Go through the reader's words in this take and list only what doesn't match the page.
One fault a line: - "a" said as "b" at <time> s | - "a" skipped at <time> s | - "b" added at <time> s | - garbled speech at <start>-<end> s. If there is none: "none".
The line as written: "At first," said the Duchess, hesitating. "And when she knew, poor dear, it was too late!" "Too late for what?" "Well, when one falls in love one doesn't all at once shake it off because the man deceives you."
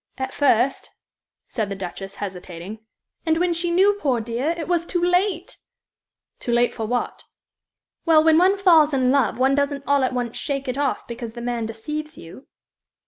none